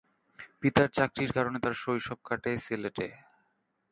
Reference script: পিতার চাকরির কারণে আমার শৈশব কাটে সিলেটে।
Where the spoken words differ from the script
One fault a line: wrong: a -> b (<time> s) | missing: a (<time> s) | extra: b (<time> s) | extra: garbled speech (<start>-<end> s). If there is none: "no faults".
wrong: আমার -> তার (1.6 s)